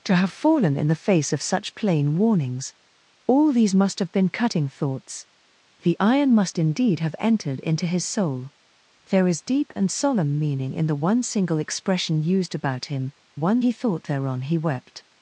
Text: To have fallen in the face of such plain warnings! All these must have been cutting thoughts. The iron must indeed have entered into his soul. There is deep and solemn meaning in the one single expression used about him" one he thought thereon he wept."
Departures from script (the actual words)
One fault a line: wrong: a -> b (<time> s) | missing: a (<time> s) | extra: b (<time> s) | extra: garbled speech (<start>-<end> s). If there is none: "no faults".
no faults